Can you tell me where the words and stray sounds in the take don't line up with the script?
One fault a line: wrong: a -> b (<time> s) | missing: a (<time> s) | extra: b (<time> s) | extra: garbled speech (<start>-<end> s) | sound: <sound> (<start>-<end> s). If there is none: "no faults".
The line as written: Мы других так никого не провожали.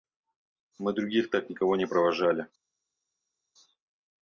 no faults